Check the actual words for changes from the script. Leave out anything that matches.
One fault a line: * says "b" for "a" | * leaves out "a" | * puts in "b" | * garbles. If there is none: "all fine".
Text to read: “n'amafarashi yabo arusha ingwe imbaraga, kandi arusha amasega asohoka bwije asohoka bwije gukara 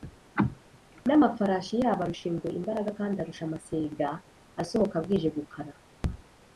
* leaves out "asohoka bwije"